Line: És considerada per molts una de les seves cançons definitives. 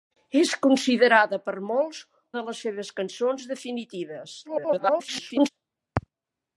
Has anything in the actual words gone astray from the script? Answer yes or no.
yes